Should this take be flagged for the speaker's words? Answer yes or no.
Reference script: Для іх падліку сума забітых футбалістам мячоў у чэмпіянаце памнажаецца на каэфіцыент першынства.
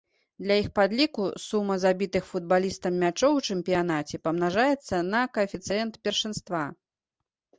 no